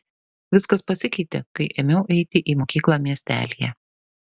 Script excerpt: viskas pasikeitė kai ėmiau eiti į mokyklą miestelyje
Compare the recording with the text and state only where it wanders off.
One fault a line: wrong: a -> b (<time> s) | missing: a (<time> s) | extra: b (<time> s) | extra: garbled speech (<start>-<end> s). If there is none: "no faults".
no faults